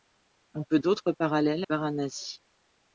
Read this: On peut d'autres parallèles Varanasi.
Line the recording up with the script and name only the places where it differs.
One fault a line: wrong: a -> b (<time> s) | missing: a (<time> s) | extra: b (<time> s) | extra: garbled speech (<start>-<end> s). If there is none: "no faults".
no faults